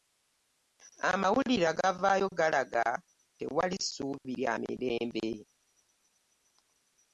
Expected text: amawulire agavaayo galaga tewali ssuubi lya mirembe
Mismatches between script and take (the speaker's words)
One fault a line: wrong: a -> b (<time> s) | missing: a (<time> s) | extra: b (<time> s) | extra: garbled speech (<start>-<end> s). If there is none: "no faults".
no faults